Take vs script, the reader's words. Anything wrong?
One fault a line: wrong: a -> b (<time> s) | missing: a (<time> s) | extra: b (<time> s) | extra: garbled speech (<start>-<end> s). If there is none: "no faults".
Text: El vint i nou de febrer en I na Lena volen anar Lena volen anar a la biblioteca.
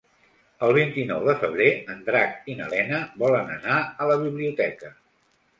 extra: Drac (2.1 s)
missing: Lena volen anar (3.8 s)